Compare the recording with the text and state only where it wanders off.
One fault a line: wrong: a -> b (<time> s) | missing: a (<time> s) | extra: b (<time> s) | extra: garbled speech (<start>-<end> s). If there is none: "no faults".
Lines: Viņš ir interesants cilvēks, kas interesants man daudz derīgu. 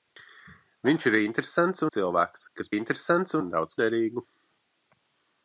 no faults